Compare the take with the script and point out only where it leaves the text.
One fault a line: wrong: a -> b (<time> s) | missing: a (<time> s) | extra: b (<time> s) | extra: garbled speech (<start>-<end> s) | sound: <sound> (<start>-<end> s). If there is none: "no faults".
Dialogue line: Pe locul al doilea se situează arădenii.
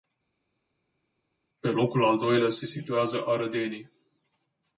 no faults